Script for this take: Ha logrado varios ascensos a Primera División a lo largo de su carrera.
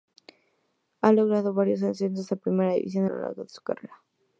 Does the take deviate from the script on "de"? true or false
true